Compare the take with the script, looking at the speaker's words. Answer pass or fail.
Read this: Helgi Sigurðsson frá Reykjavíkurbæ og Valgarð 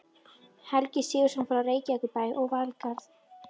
pass